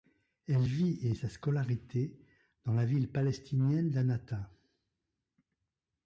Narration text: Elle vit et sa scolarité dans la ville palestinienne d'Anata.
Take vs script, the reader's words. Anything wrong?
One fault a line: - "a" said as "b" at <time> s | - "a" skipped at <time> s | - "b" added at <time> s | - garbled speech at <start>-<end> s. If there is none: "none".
none